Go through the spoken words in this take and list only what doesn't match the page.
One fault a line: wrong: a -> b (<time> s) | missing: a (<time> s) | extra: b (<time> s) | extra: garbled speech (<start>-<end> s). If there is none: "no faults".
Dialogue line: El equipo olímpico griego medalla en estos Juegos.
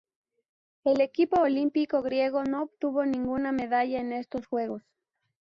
extra: no obtuvo ninguna (2.4 s)